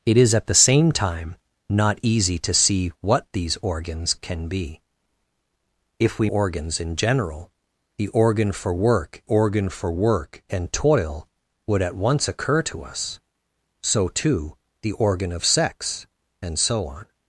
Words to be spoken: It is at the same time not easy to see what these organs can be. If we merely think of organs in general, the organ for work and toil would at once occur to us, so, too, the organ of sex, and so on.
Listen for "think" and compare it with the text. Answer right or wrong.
wrong